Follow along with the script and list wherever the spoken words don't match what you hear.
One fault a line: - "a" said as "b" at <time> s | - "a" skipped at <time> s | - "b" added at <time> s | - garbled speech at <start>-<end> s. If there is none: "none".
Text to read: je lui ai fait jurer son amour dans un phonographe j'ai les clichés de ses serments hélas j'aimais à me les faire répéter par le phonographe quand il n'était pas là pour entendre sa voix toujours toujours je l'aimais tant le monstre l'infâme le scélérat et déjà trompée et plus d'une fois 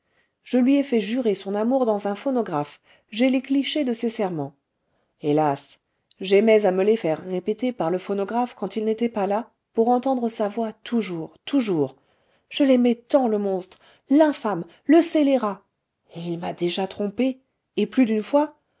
- "il m'a" added at 16.2 s